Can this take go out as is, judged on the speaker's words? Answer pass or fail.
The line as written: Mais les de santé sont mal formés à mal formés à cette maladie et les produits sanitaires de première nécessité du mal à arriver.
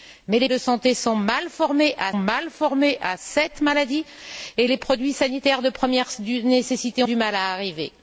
pass